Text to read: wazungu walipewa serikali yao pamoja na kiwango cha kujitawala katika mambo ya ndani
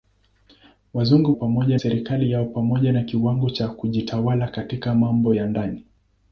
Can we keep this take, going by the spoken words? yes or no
no